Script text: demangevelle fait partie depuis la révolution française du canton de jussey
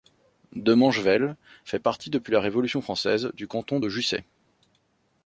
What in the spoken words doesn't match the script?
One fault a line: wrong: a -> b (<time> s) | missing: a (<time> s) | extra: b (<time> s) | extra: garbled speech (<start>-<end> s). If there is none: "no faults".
no faults